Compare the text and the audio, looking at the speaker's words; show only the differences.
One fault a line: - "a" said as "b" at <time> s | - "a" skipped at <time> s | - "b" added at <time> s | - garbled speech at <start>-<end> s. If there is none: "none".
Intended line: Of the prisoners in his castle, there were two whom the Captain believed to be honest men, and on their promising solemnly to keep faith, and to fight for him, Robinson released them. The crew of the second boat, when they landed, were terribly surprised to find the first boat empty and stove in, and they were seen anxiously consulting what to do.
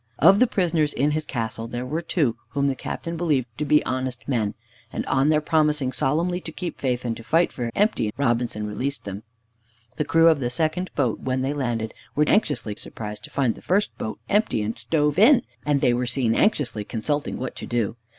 - "him" said as "empty" at 7.8 s
- "terribly" said as "anxiously" at 12.2 s